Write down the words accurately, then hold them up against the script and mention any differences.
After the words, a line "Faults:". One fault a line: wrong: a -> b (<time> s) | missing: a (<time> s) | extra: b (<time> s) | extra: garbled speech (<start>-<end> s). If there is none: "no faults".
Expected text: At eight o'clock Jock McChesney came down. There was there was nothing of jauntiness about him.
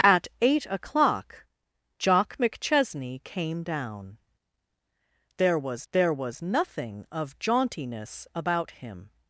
At eight o'clock Jock McChesney came down. There was there was nothing of jauntiness about him.
Faults:
no faults